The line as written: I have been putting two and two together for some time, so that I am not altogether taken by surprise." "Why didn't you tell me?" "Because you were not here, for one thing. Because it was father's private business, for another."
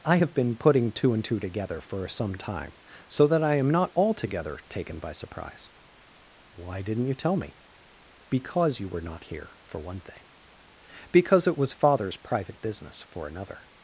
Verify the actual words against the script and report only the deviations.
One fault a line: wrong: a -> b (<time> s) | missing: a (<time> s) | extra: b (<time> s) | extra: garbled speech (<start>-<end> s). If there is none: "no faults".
no faults